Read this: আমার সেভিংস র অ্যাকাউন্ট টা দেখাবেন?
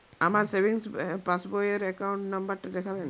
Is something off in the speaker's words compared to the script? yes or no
yes